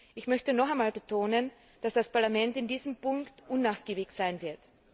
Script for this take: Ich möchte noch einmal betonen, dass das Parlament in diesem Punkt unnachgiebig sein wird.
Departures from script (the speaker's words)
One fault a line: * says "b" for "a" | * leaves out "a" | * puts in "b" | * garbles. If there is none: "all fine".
all fine